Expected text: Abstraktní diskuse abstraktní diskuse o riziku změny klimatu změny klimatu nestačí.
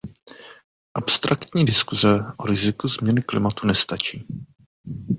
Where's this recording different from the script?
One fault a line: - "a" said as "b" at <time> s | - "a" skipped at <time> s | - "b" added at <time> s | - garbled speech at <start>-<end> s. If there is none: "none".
- "abstraktní diskuse" skipped at 2.1 s
- "změny klimatu" skipped at 3.7 s